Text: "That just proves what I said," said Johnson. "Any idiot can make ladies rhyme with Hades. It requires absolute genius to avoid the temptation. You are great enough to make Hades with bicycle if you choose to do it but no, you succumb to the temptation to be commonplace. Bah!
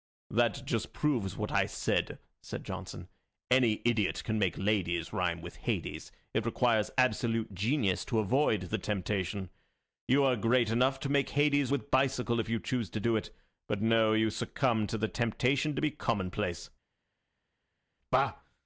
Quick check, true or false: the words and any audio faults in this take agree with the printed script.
true